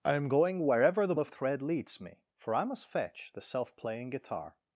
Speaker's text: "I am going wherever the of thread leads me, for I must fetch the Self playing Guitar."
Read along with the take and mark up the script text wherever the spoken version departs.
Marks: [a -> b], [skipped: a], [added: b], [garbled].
"I am going wherever the of thread leads me, for I must fetch the Self playing Guitar."